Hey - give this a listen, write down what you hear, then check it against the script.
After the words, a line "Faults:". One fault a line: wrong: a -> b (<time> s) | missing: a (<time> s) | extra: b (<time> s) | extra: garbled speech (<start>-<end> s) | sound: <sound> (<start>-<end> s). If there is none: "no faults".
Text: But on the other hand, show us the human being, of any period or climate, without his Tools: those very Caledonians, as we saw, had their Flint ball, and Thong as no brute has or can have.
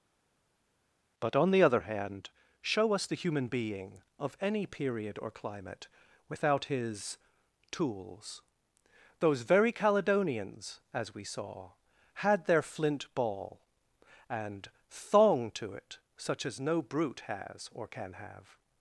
But on the other hand, show us the human being, of any period or climate, without his Tools: those very Caledonians, as we saw, had their Flint ball, and Thong to it, such as no brute has or can have.
Faults:
extra: to it such (15.5 s)